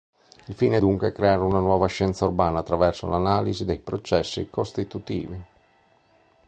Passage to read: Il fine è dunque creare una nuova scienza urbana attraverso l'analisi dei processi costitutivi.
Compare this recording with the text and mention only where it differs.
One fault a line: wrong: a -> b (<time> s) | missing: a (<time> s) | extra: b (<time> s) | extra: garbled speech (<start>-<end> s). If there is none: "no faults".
no faults